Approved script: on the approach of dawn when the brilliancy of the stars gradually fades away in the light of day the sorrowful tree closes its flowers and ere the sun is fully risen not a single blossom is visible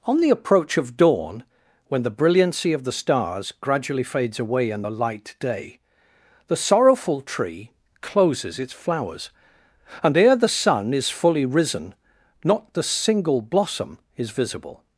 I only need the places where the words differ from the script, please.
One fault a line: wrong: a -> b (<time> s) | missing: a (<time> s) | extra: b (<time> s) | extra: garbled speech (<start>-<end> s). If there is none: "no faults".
missing: of (5.3 s)
wrong: a -> the (12.7 s)